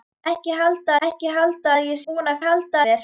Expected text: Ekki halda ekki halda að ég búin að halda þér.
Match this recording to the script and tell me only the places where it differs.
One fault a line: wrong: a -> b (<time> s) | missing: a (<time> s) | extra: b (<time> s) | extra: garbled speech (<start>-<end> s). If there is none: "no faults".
no faults